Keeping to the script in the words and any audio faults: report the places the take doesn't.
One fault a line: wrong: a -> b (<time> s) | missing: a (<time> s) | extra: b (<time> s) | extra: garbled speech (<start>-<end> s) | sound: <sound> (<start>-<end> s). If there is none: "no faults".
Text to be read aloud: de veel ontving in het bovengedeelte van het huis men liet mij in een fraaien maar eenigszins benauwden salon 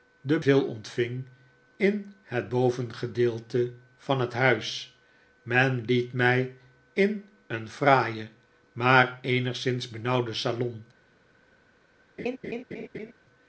sound: laugh (12.2-13.1 s)